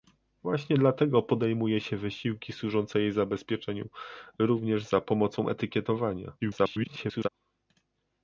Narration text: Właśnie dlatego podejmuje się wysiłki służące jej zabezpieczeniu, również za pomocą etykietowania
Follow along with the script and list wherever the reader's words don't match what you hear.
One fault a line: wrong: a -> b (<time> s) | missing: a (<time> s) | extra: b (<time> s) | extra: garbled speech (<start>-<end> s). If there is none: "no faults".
extra: garbled speech (6.4-7.3 s)